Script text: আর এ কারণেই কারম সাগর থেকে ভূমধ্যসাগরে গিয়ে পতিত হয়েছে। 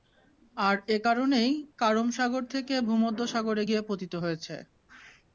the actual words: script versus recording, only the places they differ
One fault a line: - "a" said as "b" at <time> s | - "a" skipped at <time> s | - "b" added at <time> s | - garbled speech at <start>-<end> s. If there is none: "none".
none